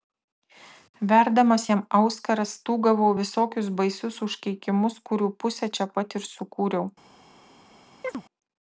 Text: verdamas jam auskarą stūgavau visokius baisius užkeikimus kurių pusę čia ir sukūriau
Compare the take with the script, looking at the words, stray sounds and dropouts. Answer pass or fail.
fail